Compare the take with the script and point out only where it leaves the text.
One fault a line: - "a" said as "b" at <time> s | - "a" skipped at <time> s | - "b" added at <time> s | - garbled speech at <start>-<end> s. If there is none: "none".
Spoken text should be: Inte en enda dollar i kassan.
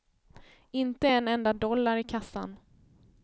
none